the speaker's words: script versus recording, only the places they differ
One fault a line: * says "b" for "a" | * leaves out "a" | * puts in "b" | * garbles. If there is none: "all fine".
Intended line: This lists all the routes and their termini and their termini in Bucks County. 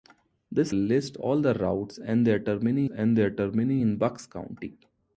all fine